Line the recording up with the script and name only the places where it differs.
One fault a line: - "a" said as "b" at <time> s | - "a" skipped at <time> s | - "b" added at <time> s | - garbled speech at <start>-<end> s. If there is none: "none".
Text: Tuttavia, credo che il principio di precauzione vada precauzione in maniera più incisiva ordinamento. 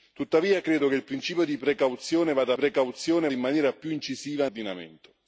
none